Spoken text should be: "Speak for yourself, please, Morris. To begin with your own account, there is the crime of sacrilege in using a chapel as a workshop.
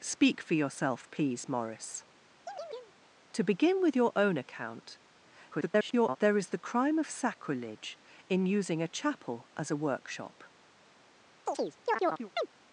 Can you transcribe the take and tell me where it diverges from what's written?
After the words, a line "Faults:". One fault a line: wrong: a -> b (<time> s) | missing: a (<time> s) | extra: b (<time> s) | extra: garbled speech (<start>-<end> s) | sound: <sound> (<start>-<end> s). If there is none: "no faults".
"Speak for yourself, please, Morris. To begin with your own account, [garbled] there is the crime of sacrilege in using a chapel as a workshop.
Faults:
sound: chirp (2.5-2.9 s)
extra: garbled speech (5.5-6.2 s)
sound: chirp (11.5-12.5 s)